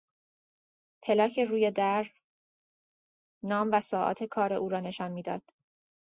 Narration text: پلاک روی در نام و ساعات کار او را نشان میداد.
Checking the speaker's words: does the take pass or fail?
pass